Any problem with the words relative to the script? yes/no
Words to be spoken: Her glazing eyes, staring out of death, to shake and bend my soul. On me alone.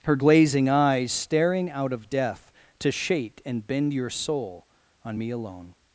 yes